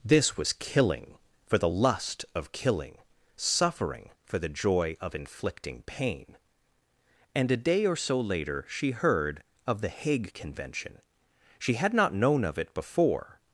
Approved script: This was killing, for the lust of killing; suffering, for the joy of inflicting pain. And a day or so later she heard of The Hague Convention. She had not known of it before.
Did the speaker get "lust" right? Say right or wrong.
right